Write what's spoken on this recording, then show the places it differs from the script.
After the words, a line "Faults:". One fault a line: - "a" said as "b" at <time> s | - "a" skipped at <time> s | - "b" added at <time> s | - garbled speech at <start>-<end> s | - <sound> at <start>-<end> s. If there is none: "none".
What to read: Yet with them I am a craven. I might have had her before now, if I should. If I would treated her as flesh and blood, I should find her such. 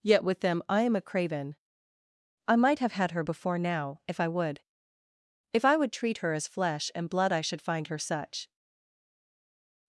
Yet with them I am a craven. I might have had her before now, if I would. If I would treat her as flesh and blood, I should find her such.
Faults:
- "should" said as "would" at 4.3 s
- "treated" said as "treat" at 5.9 s